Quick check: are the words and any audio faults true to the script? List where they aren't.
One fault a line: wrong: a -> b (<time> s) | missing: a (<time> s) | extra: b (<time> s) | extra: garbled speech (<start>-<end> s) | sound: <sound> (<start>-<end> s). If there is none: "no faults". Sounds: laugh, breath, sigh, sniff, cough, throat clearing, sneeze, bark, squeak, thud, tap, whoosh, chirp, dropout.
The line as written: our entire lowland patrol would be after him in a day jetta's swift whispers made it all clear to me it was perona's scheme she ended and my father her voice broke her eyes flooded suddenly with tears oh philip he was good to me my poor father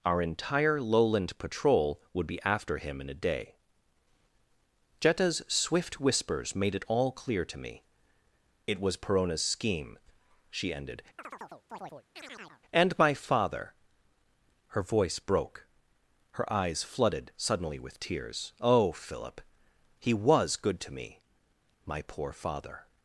sound: chirp (11.2-12.6 s)